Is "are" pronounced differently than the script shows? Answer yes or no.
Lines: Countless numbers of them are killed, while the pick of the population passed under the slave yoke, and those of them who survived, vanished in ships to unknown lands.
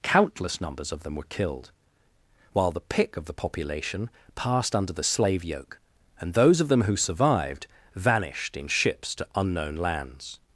yes